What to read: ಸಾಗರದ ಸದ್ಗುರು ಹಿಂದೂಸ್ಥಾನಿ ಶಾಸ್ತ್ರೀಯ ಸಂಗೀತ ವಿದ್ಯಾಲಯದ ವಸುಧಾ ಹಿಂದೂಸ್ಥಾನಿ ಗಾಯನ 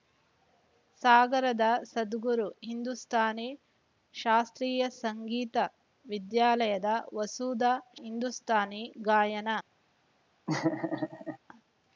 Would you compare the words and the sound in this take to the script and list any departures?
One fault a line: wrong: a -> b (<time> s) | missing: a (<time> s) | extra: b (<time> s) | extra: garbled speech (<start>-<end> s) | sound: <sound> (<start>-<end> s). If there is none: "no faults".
sound: laugh (10.5-11.4 s)